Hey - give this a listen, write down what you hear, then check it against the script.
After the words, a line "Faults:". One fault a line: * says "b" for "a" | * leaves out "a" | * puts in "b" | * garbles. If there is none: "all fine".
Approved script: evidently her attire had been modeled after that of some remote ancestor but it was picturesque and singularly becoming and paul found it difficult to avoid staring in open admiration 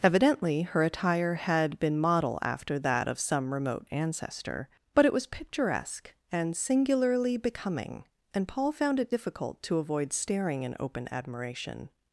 evidently her attire had been model after that of some remote ancestor but it was picturesque and singularly becoming and paul found it difficult to avoid staring in open admiration
Faults:
* says "model" for "modeled"